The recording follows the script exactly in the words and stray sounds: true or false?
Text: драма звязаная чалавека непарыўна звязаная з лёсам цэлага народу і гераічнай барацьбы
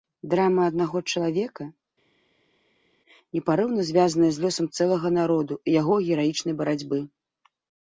false